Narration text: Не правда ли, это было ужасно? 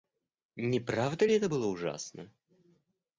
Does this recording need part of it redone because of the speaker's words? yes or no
no